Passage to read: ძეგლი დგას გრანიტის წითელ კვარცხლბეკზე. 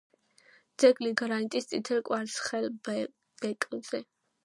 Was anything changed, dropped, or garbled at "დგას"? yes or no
yes